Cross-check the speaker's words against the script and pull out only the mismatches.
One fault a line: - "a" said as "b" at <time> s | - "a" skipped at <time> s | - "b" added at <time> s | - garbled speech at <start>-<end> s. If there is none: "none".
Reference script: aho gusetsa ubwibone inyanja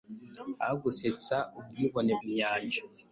none